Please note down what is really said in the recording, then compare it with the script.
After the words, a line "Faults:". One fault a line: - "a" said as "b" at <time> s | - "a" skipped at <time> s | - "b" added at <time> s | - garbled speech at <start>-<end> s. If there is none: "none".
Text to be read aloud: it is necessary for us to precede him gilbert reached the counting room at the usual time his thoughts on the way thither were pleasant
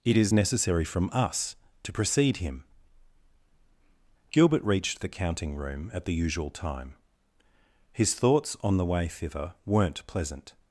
it is necessary from us to precede him gilbert reached the counting room at the usual time his thoughts on the way thither weren't pleasant
Faults:
- "for" said as "from" at 0.8 s
- "were" said as "weren't" at 9.6 s